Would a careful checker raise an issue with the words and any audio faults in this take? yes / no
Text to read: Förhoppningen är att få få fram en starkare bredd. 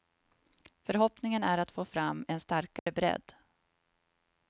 yes